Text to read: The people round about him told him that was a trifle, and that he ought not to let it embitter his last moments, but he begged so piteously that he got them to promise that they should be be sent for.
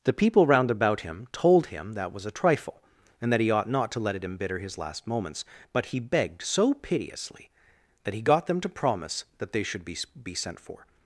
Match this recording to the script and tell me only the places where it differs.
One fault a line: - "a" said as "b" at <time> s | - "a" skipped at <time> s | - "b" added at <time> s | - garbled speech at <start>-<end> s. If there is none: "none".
none